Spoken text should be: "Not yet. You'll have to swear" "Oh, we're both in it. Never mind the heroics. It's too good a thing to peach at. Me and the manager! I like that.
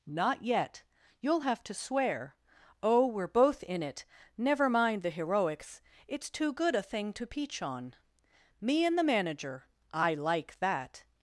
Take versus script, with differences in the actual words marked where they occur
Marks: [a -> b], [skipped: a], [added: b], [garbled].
"Not yet. You'll have to swear" "Oh, we're both in it. Never mind the heroics. It's too good a thing to peach [at. -> on] Me and the manager! I like that.